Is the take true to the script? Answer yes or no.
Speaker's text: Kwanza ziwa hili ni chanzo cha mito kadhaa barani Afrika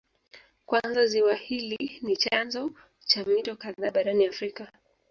yes